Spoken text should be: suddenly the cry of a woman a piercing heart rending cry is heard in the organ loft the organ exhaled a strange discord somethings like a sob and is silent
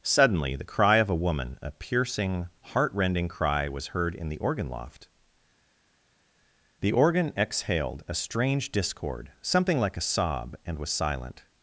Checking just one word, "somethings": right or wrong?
wrong